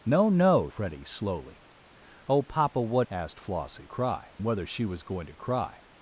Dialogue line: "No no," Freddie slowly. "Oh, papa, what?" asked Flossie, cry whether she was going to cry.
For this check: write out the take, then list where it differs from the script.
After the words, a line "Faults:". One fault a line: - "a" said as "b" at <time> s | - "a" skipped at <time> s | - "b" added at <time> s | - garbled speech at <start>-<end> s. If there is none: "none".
"No no," Freddie slowly. "Oh, papa, what?" asked Flossie, cry whether she was going to cry.
Faults:
none